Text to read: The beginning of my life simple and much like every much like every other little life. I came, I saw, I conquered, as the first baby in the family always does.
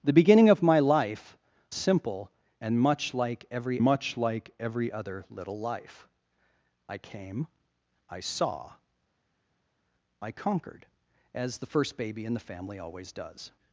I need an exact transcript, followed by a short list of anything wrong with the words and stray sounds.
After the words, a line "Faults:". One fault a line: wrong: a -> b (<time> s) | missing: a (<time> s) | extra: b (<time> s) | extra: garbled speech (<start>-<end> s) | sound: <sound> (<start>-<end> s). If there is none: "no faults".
The beginning of my life simple and much like every much like every other little life. I came, I saw, I conquered, as the first baby in the family always does.
Faults:
no faults